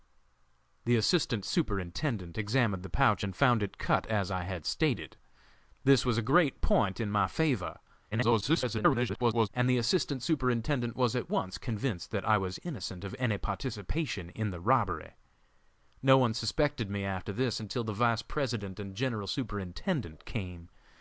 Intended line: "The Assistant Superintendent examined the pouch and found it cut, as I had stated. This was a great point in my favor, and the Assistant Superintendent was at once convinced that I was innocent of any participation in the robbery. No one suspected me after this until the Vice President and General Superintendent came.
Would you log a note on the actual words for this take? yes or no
yes